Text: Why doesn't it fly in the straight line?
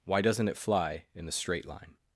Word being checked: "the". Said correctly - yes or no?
yes